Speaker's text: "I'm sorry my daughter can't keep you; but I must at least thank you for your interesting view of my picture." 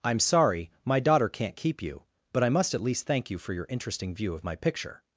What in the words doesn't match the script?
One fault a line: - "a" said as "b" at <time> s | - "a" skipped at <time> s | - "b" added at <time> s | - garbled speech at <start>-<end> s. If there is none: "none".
none